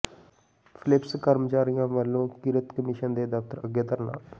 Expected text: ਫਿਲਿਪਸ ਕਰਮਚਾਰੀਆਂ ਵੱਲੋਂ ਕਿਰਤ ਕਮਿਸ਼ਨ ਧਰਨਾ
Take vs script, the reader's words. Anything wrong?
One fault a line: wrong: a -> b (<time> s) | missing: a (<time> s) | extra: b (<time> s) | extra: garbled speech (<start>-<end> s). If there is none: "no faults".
extra: ਦੇ ਦਫ਼ਤਰ ਅੱਗੇ (3.1 s)